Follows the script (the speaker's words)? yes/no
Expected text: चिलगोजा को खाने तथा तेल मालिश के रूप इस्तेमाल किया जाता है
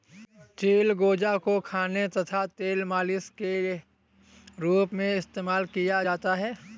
no